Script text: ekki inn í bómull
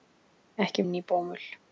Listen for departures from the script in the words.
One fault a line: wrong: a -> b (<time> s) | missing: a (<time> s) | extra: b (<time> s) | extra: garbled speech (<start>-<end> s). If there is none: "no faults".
no faults